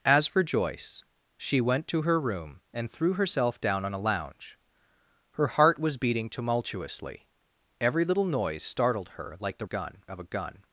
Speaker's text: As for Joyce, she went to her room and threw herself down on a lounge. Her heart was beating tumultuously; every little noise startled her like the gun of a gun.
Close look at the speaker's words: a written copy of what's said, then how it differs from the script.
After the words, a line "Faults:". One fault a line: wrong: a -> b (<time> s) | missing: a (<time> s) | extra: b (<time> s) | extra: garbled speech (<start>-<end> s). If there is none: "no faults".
As for Joyce, she went to her room and threw herself down on a lounge. Her heart was beating tumultuously; every little noise startled her like the gun of a gun.
Faults:
no faults